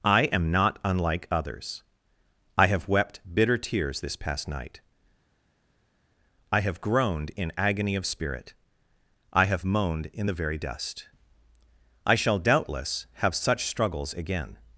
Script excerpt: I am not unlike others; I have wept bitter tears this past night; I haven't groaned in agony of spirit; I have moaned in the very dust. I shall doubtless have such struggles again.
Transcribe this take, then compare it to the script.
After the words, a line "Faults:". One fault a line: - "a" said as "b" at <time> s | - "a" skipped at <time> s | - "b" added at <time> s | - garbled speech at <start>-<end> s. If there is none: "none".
I am not unlike others; I have wept bitter tears this past night; I have groaned in agony of spirit; I have moaned in the very dust. I shall doubtless have such struggles again.
Faults:
- "haven't" said as "have" at 6.6 s